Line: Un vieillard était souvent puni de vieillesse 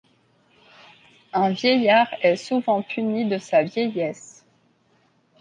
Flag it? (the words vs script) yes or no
yes